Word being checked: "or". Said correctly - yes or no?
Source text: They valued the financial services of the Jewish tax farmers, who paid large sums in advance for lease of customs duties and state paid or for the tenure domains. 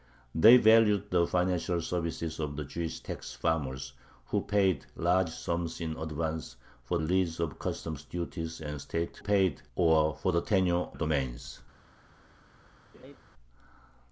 yes